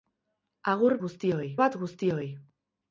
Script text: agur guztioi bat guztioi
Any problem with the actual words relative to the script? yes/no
no